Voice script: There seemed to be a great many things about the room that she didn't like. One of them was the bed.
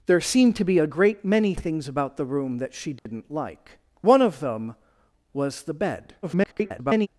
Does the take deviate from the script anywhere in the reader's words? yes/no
yes